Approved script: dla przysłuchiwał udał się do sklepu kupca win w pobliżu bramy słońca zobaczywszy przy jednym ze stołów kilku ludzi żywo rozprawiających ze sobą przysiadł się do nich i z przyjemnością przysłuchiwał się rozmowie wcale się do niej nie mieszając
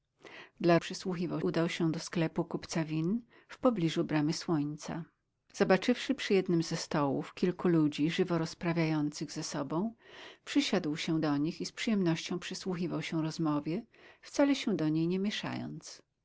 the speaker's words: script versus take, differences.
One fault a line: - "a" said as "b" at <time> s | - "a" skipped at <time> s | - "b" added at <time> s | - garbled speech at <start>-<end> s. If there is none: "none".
none